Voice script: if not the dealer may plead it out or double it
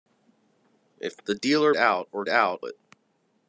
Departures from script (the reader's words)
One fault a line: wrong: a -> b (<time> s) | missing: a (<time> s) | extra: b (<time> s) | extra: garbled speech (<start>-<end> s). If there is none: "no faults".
missing: not (1.2 s)
missing: may plead it (1.7 s)
wrong: double -> out (2.3 s)